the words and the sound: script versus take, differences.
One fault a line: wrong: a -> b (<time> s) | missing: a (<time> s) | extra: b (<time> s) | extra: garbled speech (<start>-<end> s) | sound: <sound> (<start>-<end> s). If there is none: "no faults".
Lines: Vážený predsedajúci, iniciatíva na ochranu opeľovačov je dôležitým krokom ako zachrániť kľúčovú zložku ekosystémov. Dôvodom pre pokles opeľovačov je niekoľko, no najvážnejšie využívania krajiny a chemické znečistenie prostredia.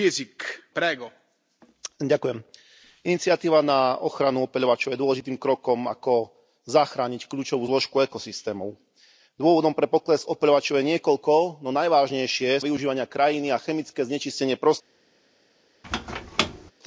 sound: squeak (15.8-16.7 s)